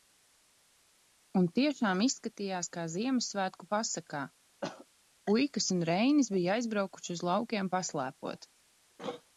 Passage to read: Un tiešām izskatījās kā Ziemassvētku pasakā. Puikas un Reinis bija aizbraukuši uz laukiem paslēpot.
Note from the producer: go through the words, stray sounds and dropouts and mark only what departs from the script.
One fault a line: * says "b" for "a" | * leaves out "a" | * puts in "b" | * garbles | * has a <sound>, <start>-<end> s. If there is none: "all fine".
* has a cough, 4.6-4.9 s